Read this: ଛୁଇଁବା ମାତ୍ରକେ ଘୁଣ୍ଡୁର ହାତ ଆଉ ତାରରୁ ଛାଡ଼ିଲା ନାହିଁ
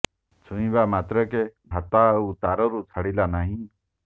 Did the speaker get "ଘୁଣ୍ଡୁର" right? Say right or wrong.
wrong